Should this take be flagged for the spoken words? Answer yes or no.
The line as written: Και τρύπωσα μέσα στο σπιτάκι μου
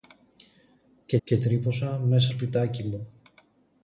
yes